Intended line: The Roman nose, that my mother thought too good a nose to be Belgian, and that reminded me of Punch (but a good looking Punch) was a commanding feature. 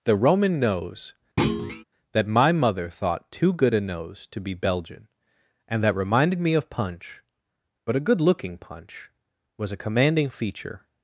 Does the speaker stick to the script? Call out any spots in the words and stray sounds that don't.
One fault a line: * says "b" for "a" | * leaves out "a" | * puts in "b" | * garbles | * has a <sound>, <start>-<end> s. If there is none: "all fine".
* has a thud, 1.4-1.8 s